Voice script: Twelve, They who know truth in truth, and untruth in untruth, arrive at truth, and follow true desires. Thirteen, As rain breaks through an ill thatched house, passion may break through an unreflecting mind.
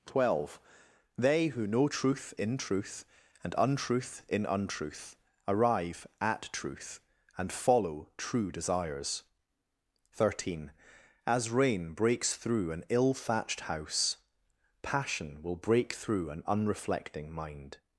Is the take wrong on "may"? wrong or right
wrong